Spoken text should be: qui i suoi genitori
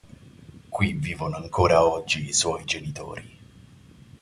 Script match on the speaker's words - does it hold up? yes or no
no